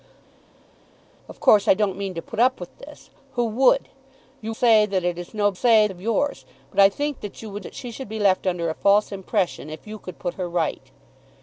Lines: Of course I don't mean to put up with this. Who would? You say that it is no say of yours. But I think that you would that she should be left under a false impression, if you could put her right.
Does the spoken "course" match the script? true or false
true